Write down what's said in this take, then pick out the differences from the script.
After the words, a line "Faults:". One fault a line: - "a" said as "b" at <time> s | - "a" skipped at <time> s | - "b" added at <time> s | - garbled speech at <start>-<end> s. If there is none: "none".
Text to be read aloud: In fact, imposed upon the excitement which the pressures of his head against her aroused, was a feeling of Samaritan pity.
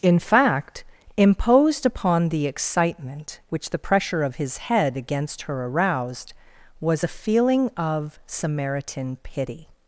In fact, imposed upon the excitement which the pressure of his head against her aroused, was a feeling of Samaritan pity.
Faults:
- "pressures" said as "pressure" at 3.8 s